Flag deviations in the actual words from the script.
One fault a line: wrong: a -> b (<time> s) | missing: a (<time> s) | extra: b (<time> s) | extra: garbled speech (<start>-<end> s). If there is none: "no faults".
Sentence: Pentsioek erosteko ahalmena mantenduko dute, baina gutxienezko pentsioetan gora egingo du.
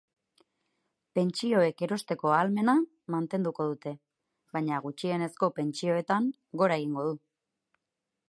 no faults